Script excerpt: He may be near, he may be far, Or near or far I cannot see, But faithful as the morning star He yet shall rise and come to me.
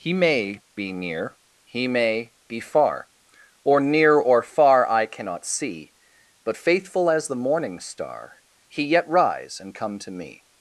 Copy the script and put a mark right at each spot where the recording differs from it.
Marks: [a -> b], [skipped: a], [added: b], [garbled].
He may be near, he may be far, Or near or far I cannot see, But faithful as the morning star He yet [skipped: shall] rise and come to me.